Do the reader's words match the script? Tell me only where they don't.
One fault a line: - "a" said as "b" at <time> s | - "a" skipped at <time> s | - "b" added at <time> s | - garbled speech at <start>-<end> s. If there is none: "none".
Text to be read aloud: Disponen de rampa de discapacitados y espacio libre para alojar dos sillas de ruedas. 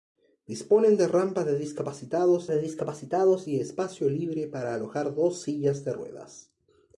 - "de discapacitados" added at 2.5 s